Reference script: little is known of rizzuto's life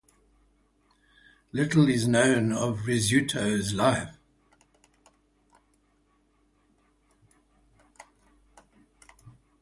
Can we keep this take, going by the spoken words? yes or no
yes